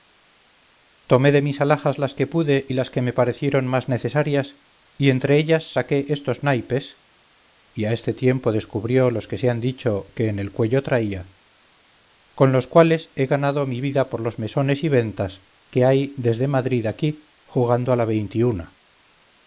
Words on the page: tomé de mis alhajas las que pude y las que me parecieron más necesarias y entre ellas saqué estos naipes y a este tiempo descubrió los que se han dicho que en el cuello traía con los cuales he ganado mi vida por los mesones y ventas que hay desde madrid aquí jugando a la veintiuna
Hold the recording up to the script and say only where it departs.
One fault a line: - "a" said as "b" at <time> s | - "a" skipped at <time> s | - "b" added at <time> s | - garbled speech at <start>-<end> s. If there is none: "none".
none